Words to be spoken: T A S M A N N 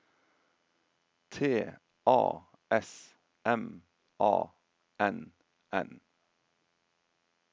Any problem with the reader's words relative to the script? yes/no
no